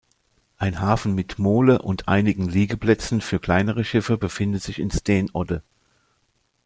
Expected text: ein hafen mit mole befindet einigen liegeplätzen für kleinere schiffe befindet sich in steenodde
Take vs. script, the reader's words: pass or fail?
fail